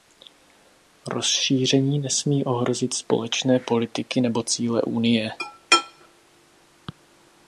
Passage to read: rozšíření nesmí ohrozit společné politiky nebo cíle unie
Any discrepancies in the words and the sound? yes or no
no